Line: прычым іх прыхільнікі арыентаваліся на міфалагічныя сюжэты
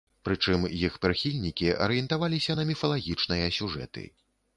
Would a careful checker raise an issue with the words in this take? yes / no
no